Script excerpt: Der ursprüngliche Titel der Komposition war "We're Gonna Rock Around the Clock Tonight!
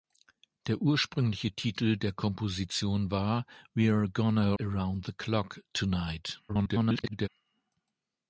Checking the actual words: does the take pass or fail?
fail